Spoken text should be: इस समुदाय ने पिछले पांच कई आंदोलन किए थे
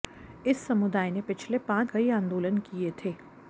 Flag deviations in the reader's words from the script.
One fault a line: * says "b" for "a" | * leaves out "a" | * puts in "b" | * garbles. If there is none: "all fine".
all fine